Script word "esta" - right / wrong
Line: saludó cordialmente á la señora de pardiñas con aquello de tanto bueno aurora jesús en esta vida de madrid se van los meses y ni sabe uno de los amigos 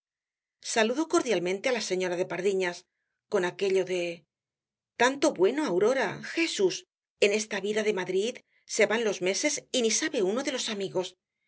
right